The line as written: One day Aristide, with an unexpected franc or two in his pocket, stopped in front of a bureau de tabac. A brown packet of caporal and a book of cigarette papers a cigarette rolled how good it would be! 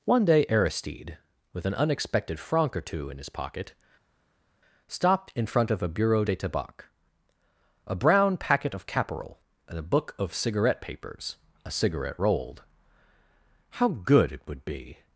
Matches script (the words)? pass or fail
pass